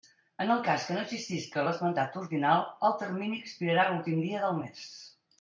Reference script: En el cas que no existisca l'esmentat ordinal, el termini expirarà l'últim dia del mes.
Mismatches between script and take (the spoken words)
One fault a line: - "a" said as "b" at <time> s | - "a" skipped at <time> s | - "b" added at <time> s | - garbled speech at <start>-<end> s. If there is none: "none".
none